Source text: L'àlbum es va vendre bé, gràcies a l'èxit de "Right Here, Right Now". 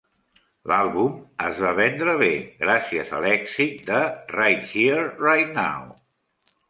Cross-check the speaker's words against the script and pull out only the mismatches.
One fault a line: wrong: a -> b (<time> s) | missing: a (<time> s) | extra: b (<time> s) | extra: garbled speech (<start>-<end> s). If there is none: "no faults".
no faults